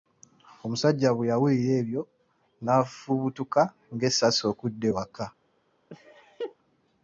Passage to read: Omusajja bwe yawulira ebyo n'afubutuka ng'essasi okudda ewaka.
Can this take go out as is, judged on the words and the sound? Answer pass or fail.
fail